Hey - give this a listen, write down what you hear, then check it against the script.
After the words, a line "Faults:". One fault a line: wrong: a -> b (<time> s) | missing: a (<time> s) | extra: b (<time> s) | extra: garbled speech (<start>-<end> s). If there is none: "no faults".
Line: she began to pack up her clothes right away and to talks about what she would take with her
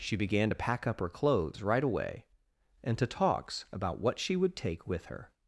she began to pack up her clothes right away and to talks about what she would take with her
Faults:
no faults